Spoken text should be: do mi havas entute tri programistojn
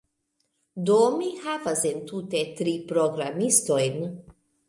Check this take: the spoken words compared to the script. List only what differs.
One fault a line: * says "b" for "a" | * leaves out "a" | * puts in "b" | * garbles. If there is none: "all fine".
all fine